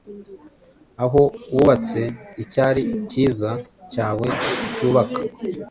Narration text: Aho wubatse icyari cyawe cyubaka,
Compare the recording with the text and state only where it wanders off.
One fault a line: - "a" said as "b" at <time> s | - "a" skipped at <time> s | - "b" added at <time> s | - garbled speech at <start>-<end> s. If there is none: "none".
- "cyiza" added at 3.1 s